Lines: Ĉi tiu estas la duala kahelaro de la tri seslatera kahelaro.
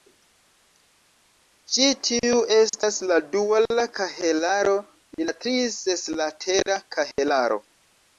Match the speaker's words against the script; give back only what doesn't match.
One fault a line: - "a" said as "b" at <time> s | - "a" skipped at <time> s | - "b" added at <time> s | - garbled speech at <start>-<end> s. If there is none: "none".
none